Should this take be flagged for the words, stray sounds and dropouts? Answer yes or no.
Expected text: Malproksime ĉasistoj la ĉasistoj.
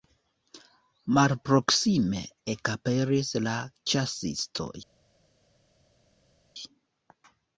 yes